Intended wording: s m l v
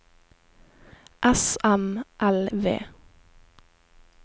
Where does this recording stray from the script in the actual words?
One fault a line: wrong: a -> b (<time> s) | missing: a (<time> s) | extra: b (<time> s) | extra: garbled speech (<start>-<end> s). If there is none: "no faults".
no faults